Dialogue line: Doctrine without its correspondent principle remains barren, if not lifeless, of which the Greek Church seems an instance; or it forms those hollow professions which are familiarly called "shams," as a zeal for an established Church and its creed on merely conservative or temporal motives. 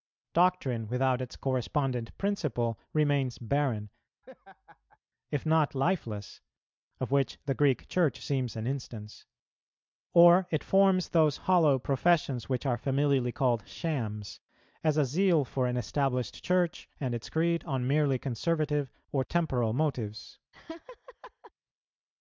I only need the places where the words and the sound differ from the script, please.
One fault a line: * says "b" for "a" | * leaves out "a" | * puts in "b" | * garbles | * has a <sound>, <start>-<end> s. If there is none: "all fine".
* has a laugh, 4.2-5.0 s
* has a laugh, 20.5-21.5 s